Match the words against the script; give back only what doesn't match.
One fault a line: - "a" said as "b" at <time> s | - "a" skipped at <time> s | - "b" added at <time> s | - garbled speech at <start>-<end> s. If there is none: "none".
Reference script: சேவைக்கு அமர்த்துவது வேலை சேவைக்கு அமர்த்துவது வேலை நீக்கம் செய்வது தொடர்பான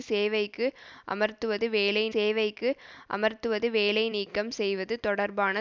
none